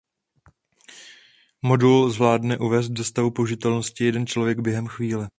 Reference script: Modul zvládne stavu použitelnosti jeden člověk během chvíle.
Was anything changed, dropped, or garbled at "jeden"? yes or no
no